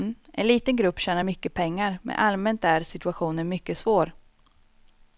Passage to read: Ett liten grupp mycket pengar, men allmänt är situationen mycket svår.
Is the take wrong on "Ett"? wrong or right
wrong